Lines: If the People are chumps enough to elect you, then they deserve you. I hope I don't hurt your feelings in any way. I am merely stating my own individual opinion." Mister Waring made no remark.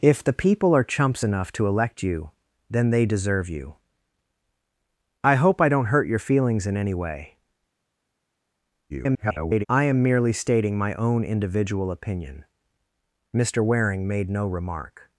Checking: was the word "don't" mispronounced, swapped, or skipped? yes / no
no